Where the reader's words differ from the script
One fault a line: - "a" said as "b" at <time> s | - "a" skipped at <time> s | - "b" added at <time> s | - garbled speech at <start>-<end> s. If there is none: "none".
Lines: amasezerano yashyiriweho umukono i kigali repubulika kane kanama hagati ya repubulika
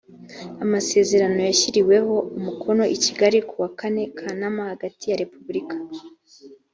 - "repubulika" said as "kuwa" at 3.5 s